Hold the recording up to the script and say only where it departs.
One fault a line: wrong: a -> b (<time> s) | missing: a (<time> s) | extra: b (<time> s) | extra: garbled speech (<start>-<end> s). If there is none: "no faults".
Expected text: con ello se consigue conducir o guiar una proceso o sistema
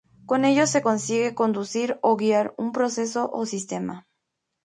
wrong: una -> un (2.6 s)